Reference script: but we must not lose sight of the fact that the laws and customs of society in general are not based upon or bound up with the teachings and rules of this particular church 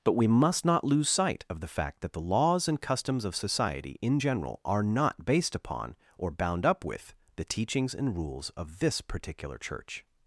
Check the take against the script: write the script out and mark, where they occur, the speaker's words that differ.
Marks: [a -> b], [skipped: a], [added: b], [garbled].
but we must not lose sight of the fact that the laws and customs of society in general are not based upon or bound up with the teachings and rules of this particular church